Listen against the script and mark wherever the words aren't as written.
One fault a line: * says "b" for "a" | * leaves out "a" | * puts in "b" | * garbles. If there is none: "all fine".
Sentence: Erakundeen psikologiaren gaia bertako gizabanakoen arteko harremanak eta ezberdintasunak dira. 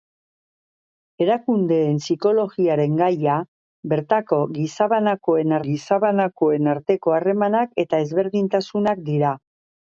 * puts in "gizabanakoen"